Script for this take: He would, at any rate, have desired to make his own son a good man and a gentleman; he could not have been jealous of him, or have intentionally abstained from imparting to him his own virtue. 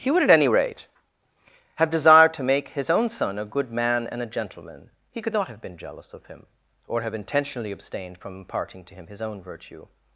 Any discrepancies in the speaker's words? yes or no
no